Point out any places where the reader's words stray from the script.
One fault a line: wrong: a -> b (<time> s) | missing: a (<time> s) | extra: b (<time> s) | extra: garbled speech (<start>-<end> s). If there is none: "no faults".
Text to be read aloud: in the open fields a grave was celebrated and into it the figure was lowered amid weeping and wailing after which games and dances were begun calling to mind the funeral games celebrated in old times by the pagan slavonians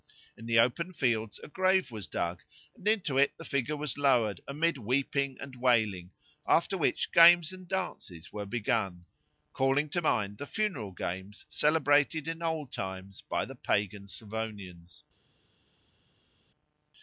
wrong: celebrated -> dug (2.1 s)